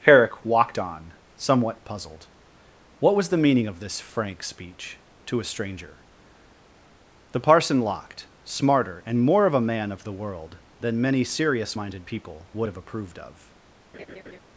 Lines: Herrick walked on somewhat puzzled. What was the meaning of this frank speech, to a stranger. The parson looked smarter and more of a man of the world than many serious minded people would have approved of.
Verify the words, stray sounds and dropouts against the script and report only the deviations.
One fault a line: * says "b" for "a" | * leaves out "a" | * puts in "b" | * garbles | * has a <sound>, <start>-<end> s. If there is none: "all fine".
* says "locked" for "looked"
* has a laugh, 13.9-14.4 s